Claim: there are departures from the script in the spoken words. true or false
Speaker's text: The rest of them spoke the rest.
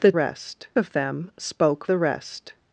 false